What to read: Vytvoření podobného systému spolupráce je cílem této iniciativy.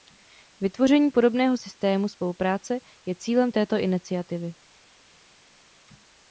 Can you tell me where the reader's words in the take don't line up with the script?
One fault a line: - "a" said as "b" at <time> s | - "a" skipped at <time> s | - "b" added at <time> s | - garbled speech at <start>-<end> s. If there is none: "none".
none